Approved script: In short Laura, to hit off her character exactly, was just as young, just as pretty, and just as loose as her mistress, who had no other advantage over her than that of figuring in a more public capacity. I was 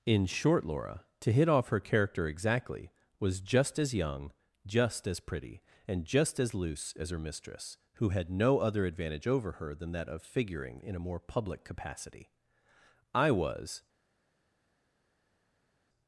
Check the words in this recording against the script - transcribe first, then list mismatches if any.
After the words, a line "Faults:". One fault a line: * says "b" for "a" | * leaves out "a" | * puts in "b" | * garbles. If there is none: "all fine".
In short Laura, to hit off her character exactly, was just as young, just as pretty, and just as loose as her mistress, who had no other advantage over her than that of figuring in a more public capacity. I was
Faults:
all fine